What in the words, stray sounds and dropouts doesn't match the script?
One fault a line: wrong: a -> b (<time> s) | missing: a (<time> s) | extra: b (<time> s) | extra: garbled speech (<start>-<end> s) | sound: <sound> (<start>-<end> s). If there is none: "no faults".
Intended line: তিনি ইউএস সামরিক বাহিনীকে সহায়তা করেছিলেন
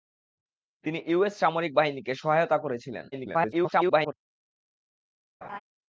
extra: garbled speech (3.1-4.1 s)
sound: laugh (5.4-5.6 s)